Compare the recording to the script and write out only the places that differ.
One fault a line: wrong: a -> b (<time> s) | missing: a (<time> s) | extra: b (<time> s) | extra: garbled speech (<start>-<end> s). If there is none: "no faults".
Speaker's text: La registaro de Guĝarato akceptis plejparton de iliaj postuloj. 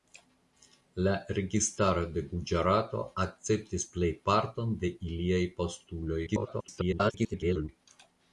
extra: garbled speech (6.3-7.7 s)